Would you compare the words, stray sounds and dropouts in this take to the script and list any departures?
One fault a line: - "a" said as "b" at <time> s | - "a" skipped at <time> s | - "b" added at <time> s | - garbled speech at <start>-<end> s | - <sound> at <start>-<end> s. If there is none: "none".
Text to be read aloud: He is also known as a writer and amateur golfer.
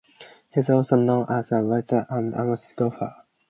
none